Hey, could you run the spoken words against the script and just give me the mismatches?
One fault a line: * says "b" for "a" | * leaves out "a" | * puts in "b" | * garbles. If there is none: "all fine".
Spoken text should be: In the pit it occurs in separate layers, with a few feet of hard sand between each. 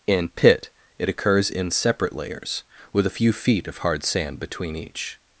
* leaves out "the"